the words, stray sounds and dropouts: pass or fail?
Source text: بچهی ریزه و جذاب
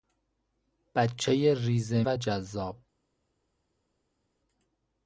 pass